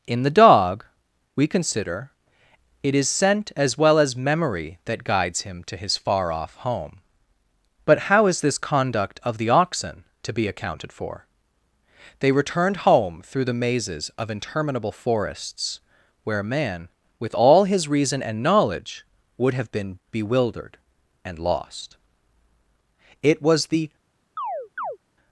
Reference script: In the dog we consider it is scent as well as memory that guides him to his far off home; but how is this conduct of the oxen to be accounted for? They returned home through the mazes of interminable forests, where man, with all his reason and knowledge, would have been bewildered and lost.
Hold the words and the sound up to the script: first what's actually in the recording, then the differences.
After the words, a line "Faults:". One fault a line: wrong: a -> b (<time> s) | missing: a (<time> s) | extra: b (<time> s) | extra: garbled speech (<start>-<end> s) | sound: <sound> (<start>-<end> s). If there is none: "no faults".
In the dog we consider it is scent as well as memory that guides him to his far off home; but how is this conduct of the oxen to be accounted for? They returned home through the mazes of interminable forests, where man, with all his reason and knowledge, would have been bewildered and lost. It was the
Faults:
extra: It was the (23.2 s)
sound: chirp (24.4-25.0 s)